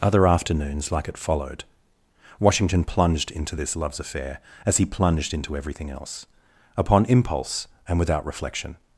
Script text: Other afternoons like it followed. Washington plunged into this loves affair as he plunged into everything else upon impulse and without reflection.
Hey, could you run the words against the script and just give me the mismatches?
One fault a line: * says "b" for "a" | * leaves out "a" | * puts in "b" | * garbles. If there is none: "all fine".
all fine